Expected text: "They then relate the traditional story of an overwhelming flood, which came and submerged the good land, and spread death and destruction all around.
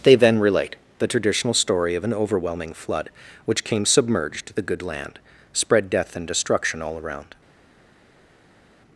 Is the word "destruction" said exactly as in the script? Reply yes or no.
yes